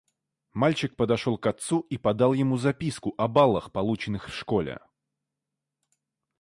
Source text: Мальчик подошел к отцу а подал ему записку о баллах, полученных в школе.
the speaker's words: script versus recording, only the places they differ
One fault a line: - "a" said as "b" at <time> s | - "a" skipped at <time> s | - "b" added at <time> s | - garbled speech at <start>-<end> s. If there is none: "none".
- "а" said as "и" at 1.8 s